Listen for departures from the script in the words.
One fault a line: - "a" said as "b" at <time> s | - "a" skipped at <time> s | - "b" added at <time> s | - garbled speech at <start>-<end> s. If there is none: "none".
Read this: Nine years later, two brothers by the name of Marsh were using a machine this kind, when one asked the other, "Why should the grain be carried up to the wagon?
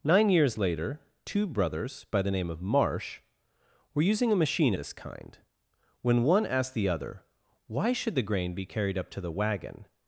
none